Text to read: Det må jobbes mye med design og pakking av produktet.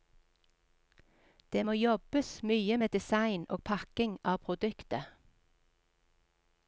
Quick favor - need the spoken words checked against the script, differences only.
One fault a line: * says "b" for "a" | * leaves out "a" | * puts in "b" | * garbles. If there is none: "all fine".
all fine